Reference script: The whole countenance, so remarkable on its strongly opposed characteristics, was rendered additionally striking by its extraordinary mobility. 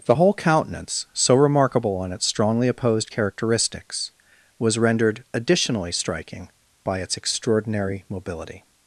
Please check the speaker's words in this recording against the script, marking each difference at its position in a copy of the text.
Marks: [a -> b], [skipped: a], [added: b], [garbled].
The whole countenance, so remarkable on its strongly opposed characteristics, was rendered additionally striking by its extraordinary mobility.